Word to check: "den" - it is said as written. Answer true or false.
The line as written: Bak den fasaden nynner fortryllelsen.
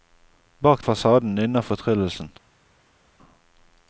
false